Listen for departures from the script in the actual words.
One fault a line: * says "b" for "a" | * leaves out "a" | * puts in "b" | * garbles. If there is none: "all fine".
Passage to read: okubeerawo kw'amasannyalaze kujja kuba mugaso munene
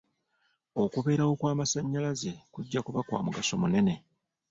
* puts in "kwa"